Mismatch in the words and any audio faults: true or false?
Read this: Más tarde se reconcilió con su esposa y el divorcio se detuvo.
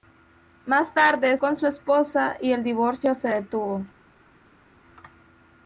true